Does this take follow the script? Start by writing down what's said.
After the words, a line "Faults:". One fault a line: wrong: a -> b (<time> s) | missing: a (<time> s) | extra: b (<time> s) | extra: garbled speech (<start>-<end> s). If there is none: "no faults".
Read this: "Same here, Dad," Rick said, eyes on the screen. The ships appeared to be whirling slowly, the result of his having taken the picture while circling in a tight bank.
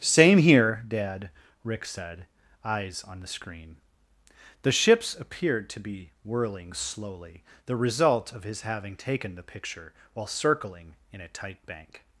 "Same here, Dad," Rick said, eyes on the screen. The ships appeared to be whirling slowly, the result of his having taken the picture while circling in a tight bank.
Faults:
no faults